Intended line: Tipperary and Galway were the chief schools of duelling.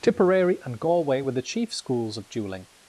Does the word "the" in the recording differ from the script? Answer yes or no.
no